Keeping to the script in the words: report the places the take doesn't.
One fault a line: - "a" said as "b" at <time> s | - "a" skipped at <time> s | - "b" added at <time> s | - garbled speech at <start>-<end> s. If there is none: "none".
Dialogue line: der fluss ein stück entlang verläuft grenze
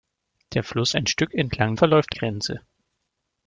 none